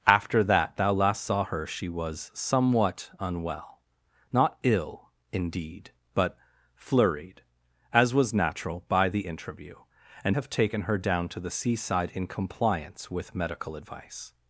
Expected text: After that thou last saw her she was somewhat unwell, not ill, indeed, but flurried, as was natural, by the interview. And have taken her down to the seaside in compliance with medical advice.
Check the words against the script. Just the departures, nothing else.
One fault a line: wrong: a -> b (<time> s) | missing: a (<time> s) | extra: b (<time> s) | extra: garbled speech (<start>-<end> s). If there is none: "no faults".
no faults